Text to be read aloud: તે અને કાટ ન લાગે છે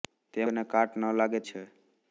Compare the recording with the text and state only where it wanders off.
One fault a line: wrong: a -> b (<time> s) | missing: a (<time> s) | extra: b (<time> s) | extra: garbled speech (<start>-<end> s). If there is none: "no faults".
no faults